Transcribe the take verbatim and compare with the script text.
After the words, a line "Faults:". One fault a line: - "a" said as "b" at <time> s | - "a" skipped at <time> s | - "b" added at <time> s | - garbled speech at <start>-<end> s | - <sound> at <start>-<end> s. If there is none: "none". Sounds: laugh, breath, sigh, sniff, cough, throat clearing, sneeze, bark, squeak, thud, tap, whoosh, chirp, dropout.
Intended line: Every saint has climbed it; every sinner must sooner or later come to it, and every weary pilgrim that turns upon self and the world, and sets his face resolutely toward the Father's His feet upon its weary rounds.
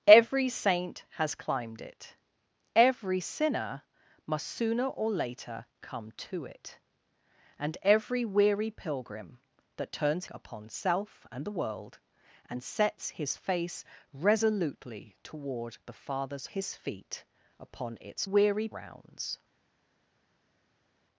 Every saint has climbed it; every sinner must sooner or later come to it, and every weary pilgrim that turns upon self and the world, and sets his face resolutely toward the Father's His feet upon its weary rounds.
Faults:
none